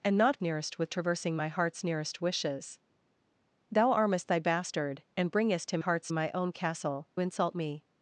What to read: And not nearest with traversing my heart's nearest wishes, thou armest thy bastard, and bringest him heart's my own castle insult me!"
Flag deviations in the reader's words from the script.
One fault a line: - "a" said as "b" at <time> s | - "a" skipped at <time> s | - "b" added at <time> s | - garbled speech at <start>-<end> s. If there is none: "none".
none